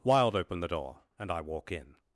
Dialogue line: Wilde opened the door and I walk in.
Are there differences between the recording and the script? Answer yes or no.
no